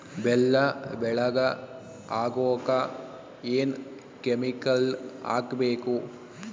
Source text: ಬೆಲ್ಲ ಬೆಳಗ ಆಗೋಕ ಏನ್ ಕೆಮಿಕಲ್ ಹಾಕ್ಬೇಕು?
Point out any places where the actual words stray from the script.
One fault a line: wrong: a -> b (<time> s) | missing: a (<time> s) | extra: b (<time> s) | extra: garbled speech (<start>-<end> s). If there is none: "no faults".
no faults